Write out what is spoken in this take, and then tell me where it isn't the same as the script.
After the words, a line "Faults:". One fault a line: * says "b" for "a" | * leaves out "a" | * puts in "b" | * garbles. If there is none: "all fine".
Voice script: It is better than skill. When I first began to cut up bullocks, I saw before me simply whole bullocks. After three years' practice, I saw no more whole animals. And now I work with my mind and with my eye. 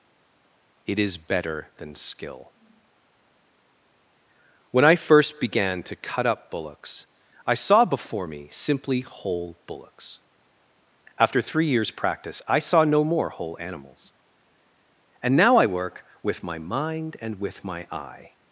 It is better than skill. When I first began to cut up bullocks, I saw before me simply whole bullocks. After three years' practice, I saw no more whole animals. And now I work with my mind and with my eye.
Faults:
all fine